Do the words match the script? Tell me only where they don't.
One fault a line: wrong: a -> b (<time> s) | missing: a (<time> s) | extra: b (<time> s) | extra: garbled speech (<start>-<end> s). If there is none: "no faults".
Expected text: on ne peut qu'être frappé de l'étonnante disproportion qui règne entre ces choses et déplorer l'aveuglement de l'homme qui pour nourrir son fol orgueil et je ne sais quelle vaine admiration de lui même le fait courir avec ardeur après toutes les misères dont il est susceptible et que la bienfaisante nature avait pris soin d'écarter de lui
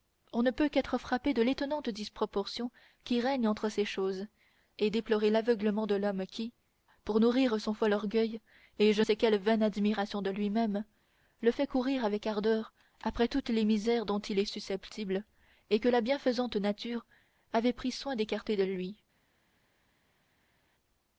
missing: ne (9.0 s)